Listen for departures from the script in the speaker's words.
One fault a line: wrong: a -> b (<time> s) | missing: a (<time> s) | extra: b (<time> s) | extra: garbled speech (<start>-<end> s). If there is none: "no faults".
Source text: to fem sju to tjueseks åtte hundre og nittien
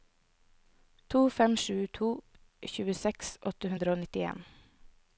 no faults